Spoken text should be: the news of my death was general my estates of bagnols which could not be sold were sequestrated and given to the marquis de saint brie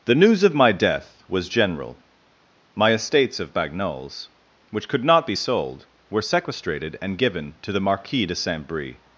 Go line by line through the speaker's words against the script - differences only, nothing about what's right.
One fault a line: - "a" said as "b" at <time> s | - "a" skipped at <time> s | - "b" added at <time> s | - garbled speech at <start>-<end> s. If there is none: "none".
none